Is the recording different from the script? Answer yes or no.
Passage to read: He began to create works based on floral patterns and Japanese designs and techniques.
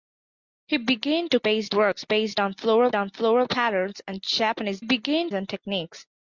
yes